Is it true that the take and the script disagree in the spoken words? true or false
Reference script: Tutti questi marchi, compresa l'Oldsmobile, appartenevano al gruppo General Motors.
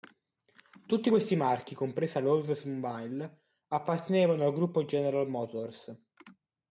false